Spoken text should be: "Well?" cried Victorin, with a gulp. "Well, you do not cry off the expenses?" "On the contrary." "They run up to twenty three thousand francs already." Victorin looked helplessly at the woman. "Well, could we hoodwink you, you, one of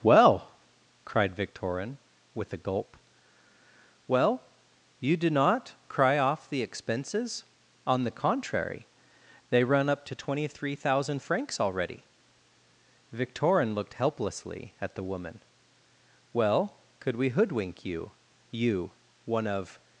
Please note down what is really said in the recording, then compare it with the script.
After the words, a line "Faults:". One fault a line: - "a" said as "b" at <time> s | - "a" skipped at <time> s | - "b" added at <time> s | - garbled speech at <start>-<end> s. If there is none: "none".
"Well?" cried Victorin, with a gulp. "Well, you do not cry off the expenses?" "On the contrary." "They run up to twenty three thousand francs already." Victorin looked helplessly at the woman. "Well, could we hoodwink you, you, one of
Faults:
none